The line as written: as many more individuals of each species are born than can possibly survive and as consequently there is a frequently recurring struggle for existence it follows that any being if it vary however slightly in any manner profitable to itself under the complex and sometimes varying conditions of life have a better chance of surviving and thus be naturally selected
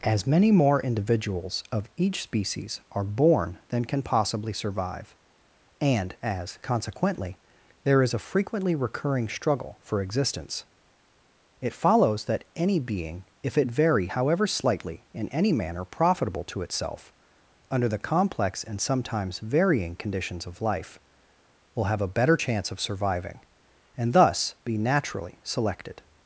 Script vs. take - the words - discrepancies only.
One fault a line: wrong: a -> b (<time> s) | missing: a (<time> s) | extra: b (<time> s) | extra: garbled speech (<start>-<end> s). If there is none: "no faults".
extra: will (21.7 s)